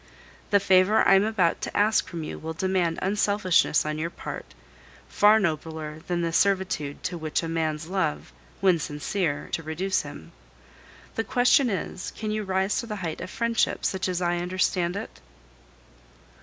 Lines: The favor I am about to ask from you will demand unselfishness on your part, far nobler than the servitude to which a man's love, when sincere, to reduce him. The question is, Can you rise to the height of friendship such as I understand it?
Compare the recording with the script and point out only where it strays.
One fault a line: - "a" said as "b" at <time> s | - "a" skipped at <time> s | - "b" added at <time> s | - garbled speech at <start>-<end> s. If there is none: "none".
none